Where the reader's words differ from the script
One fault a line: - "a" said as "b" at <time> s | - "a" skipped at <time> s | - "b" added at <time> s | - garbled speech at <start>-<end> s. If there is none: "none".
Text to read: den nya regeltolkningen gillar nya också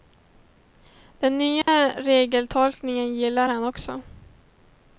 - "nya" said as "han" at 3.5 s